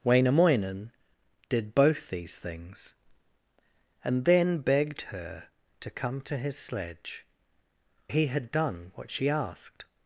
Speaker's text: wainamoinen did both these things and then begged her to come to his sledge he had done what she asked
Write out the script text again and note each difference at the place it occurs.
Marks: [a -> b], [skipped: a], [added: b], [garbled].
wainamoinen did both these things and then begged her to come to his sledge he had done what she asked